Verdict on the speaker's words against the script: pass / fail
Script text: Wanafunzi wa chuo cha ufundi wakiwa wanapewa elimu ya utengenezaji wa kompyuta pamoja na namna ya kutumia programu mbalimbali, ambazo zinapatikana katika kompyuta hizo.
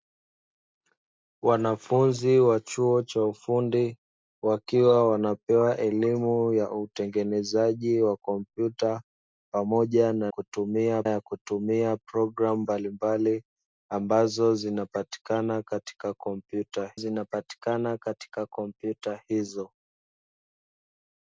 fail